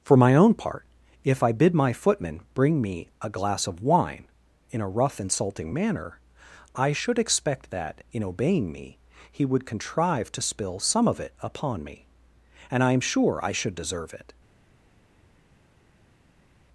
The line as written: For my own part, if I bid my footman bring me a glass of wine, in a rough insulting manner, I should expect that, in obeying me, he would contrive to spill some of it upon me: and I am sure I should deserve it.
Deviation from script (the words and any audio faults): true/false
false